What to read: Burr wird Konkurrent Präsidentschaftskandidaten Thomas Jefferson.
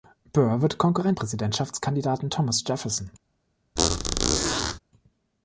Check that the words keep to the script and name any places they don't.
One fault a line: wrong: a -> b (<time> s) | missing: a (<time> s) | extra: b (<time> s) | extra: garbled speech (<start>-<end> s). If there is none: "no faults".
no faults